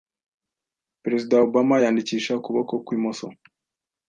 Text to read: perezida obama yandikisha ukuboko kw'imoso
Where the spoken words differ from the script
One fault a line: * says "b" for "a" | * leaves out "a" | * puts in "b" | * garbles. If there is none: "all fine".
all fine